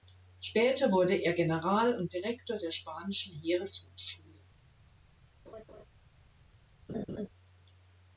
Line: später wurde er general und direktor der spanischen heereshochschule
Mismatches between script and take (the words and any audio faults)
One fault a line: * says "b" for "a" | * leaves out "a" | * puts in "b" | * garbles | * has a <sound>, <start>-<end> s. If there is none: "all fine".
* has a laugh, 5.5-5.8 s
* has a laugh, 6.9-7.3 s